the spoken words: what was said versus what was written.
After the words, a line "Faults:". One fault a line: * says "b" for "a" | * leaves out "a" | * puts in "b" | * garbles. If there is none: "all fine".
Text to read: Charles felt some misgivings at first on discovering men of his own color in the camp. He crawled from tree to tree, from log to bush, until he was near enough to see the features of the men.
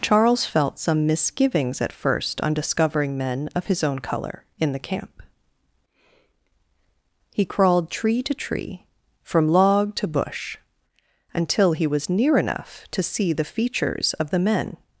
Charles felt some misgivings at first on discovering men of his own color in the camp. He crawled tree to tree, from log to bush, until he was near enough to see the features of the men.
Faults:
* leaves out "from"